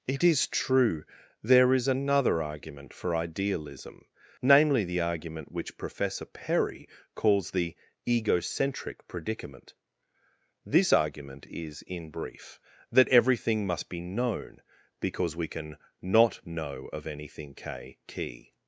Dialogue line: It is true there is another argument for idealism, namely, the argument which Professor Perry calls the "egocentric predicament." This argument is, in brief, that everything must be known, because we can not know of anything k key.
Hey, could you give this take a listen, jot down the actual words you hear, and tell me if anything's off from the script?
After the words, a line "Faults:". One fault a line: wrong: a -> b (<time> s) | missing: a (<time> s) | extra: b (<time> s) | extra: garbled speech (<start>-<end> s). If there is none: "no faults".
It is true there is another argument for idealism, namely, the argument which Professor Perry calls the "egocentric predicament." This argument is, in brief, that everything must be known, because we can not know of anything k key.
Faults:
no faults